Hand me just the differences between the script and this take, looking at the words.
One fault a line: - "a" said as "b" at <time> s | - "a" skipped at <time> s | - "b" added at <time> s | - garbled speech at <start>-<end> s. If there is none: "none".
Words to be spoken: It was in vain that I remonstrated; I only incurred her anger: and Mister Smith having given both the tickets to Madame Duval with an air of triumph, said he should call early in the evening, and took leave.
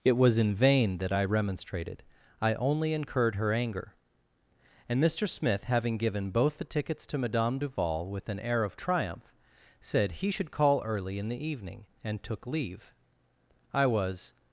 - "I was" added at 13.7 s